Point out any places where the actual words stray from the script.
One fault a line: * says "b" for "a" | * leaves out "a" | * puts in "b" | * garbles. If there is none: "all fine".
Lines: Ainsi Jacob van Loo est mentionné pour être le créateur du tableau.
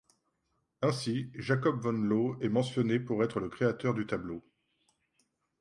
all fine